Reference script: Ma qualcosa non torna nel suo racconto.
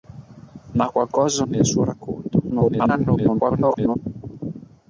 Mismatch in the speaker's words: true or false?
true